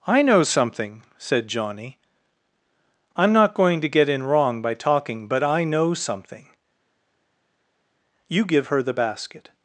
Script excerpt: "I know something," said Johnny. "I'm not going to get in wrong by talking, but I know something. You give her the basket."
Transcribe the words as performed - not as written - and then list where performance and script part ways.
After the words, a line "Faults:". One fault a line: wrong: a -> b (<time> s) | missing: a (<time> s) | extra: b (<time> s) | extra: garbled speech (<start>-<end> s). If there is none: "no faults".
"I know something," said Johnny. "I'm not going to get in wrong by talking, but I know something. You give her the basket."
Faults:
no faults